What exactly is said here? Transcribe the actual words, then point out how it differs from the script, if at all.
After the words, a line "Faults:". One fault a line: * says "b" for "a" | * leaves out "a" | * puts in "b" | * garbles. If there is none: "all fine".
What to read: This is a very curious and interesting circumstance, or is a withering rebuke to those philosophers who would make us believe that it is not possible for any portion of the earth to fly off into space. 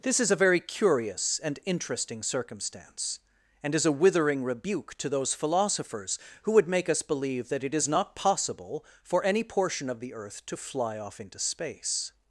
This is a very curious and interesting circumstance, and is a withering rebuke to those philosophers who would make us believe that it is not possible for any portion of the earth to fly off into space.
Faults:
* says "and" for "or"